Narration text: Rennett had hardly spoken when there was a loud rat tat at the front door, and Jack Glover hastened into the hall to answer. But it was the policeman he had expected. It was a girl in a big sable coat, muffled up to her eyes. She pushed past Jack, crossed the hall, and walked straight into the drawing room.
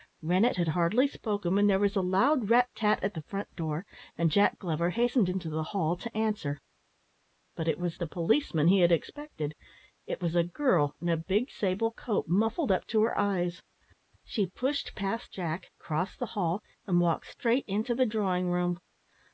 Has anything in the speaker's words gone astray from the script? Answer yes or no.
no